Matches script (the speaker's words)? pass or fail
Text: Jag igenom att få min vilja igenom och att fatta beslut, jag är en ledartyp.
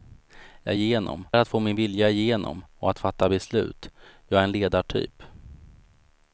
pass